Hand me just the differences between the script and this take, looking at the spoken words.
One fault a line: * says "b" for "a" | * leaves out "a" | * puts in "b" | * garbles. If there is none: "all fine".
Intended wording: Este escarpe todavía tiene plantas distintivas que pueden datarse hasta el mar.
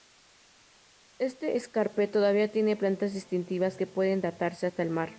all fine